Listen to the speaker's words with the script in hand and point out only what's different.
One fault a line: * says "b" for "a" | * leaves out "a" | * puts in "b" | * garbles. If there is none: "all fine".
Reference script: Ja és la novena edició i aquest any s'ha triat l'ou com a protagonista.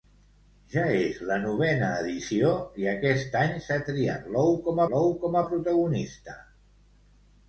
* puts in "l'ou com"